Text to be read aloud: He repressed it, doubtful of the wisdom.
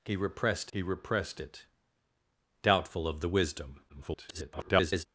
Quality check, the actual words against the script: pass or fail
fail